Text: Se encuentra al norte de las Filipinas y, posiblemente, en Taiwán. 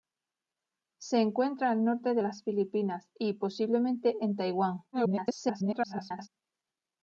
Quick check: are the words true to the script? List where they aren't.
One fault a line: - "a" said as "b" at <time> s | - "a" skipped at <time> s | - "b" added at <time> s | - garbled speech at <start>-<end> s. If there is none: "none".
- garbled speech at 4.9-6.3 s